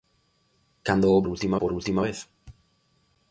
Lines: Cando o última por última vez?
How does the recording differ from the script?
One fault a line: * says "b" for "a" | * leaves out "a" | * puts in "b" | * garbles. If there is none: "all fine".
all fine